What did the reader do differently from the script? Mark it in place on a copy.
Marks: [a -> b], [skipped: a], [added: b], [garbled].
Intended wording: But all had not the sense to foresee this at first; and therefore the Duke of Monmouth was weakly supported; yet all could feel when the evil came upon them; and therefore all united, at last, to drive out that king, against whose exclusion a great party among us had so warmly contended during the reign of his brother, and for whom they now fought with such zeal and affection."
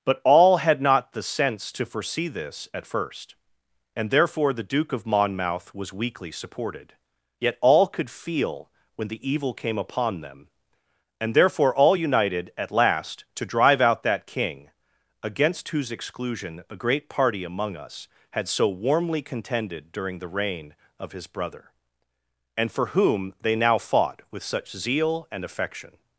But all had not the sense to foresee this at first; and therefore the Duke of Monmouth was weakly supported; yet all could feel when the evil came upon them; and therefore all united, at last, to drive out that king, against whose exclusion a great party among us had so warmly contended during the reign of his brother, and for whom they now fought with such zeal and affection."